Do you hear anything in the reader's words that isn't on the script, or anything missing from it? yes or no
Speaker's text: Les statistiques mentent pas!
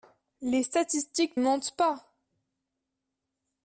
no